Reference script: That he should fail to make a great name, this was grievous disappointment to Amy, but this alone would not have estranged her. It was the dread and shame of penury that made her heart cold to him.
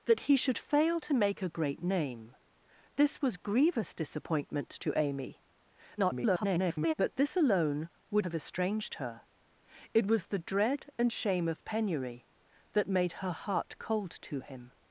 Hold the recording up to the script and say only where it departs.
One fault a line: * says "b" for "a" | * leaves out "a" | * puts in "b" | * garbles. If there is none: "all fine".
* garbles
* leaves out "not"